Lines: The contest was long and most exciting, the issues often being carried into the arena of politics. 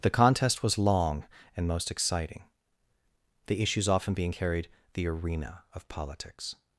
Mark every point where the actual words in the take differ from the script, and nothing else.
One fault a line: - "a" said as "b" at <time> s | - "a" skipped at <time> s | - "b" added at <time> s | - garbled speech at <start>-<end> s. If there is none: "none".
- "into" skipped at 4.7 s